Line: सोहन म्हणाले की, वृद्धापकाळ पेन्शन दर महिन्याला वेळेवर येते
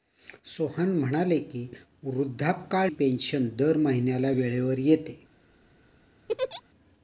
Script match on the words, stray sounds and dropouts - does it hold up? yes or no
no